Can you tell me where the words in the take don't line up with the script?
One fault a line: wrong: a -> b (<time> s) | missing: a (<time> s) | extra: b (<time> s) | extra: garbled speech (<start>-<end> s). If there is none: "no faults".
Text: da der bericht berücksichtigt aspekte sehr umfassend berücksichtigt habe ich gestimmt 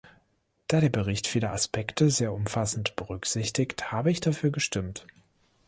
wrong: berücksichtigt -> viele (1.3 s)
extra: dafür (4.2 s)